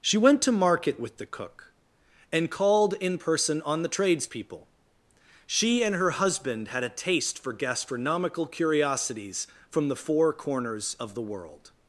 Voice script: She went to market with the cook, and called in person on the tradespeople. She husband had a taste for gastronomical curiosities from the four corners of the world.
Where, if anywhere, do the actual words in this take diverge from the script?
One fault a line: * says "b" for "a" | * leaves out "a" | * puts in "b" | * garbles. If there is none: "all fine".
* puts in "and her"